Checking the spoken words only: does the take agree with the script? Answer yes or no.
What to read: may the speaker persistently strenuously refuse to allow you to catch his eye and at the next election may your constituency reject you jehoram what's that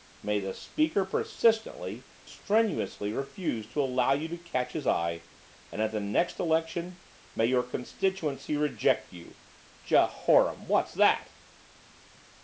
yes